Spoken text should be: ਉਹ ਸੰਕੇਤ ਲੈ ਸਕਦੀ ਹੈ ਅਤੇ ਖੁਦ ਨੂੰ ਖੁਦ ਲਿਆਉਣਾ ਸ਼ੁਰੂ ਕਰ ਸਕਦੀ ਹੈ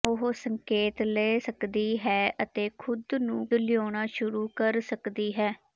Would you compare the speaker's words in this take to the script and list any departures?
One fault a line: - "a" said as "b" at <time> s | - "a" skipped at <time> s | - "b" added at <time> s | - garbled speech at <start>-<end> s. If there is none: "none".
- "ਖੁਦ" skipped at 3.5 s